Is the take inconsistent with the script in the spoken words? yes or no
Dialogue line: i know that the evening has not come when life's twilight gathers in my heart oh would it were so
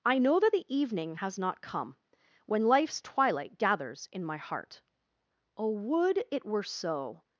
no